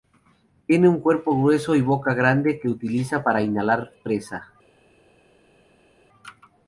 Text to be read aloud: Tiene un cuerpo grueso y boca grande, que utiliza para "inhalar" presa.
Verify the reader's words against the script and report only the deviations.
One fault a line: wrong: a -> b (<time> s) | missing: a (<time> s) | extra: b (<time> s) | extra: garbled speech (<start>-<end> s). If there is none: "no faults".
no faults